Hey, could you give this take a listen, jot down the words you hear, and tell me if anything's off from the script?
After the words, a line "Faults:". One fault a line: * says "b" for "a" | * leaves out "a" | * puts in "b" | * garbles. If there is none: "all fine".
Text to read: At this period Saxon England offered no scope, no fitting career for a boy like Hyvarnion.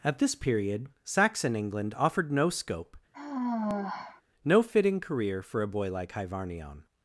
At this period Saxon England offered no scope, no fitting career for a boy like Hyvarnion.
Faults:
all fine